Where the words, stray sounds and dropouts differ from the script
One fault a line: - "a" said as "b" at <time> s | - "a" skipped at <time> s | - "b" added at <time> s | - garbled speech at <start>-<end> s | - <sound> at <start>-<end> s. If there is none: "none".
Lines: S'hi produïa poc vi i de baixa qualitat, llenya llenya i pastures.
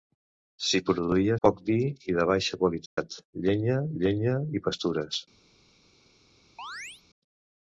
- dropout at 2.9-3.0 s
- chirp at 6.6-7.0 s